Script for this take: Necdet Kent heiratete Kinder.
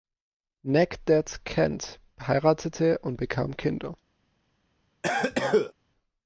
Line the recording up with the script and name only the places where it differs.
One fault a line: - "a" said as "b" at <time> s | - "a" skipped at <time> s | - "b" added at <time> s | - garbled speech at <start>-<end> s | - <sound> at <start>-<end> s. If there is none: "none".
- "und bekam" added at 3.0 s
- cough at 5.0-5.7 s